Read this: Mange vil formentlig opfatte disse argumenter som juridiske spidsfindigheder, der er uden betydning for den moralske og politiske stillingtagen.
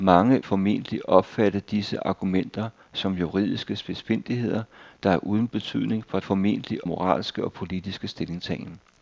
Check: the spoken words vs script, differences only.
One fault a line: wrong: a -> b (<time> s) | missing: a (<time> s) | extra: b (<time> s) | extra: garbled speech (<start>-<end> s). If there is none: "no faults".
missing: vil (0.4 s)
wrong: den -> formentlig (6.2 s)